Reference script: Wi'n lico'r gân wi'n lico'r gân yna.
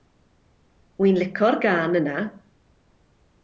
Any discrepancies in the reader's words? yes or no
yes